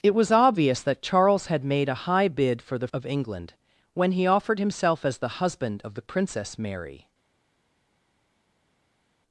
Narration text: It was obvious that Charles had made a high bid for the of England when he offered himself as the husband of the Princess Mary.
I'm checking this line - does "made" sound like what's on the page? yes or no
yes